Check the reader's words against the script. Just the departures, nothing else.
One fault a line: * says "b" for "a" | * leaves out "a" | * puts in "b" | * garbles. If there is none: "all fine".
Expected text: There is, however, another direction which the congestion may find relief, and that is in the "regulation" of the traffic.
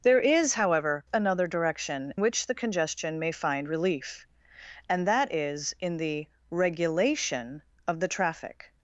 all fine